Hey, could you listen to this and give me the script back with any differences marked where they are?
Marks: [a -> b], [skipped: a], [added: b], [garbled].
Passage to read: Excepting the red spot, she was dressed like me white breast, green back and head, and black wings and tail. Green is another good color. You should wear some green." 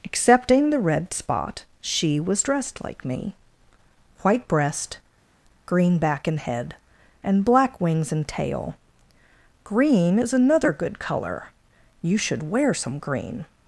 Excepting the red spot, she was dressed like me white breast, green back and head, and black wings and tail. Green is another good color. You should wear some green."